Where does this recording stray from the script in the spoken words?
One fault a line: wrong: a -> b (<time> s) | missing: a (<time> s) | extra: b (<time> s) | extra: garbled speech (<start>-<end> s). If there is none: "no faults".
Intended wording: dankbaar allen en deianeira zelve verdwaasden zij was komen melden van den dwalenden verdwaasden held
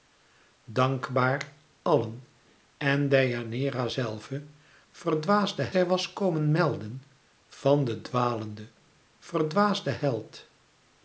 no faults